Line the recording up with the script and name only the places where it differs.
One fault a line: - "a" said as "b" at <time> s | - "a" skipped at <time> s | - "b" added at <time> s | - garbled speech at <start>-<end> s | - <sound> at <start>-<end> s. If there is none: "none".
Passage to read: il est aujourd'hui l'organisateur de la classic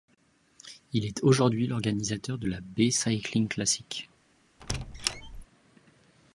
- "bay cycling" added at 2.6 s
- squeak at 4.6-5.5 s